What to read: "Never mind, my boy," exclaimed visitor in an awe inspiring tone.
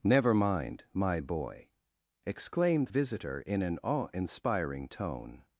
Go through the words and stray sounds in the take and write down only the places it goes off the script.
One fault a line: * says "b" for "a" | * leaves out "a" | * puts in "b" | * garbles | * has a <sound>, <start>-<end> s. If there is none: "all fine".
all fine